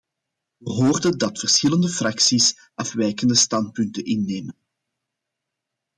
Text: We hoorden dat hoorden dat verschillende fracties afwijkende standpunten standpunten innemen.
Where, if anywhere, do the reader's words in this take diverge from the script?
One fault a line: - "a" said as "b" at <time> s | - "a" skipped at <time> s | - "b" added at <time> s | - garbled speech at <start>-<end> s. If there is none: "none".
- "hoorden dat" skipped at 1.4 s
- "standpunten" skipped at 4.0 s